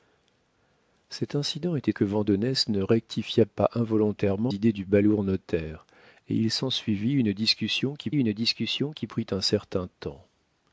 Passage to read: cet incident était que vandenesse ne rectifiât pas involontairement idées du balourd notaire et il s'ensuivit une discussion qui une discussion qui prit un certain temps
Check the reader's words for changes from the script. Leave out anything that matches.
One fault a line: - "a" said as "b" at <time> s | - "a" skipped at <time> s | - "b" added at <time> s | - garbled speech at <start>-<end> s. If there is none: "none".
none